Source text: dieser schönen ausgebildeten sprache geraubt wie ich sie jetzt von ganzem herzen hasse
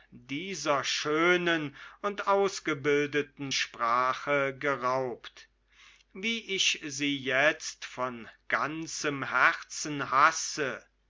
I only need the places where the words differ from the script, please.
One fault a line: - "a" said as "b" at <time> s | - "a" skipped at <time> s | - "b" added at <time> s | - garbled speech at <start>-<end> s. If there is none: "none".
- "und" added at 2.0 s